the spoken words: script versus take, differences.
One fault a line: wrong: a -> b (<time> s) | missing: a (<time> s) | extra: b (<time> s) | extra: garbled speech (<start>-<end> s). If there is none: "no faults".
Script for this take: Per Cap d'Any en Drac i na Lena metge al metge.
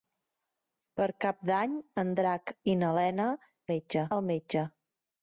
no faults